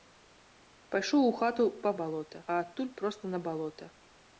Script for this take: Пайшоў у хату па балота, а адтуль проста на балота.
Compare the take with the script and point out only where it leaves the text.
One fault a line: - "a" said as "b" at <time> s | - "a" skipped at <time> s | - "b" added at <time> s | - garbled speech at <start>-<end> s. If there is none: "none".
none